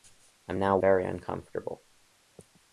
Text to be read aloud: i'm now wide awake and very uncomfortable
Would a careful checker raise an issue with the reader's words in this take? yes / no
yes